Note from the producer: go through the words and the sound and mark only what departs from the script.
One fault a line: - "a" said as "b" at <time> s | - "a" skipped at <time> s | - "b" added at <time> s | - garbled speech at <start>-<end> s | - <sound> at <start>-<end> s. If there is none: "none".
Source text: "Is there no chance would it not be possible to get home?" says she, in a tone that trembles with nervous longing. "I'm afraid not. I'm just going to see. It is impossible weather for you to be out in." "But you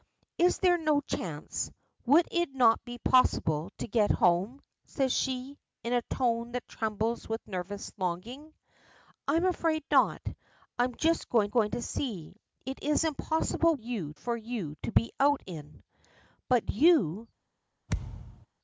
- "going" added at 11.5 s
- "weather" said as "you" at 13.8 s
- thud at 17.9-18.5 s